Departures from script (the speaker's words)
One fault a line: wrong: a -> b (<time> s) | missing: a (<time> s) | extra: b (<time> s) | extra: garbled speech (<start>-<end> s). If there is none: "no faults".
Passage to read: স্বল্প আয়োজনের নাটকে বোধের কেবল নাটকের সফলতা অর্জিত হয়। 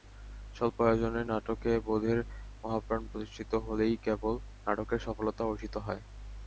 extra: মহাপ্রাণ প্রতিষ্ঠিত হলেই (2.6 s)